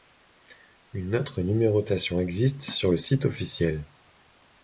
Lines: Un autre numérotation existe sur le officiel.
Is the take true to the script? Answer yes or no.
no